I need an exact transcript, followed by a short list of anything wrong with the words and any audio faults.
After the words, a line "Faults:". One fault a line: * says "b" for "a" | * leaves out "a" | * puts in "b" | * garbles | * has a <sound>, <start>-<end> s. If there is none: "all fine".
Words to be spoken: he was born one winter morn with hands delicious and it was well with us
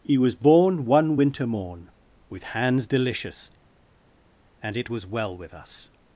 he was born one winter morn with hands delicious and it was well with us
Faults:
all fine